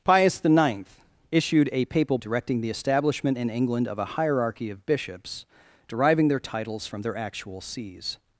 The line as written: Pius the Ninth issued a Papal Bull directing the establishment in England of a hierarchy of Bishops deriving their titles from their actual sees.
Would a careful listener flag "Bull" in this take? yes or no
yes